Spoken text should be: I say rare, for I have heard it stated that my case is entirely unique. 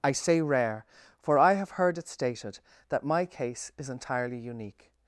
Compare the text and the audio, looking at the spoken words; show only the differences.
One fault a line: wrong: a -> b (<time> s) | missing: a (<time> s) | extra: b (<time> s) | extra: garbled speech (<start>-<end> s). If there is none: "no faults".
no faults